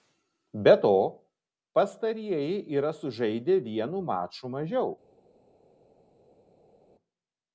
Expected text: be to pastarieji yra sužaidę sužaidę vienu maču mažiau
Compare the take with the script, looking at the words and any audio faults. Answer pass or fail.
fail